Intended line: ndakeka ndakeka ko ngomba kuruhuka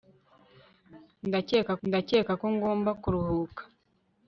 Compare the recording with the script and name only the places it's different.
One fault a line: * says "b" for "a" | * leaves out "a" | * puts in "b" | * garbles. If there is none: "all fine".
all fine